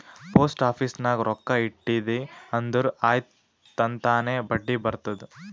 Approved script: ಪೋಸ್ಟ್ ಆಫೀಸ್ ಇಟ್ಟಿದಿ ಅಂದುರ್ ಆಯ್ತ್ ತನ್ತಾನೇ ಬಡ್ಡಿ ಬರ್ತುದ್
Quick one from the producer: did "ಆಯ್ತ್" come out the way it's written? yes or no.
yes